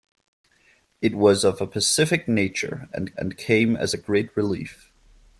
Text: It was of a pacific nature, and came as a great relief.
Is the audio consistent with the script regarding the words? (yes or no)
no